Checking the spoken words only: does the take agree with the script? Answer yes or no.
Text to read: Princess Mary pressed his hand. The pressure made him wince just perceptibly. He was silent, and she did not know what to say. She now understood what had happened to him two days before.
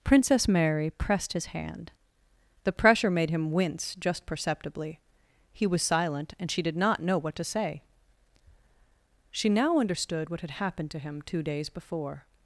yes